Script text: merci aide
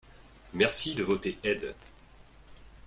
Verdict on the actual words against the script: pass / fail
fail